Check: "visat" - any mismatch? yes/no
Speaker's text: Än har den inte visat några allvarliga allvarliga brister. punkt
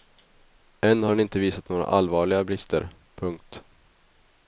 no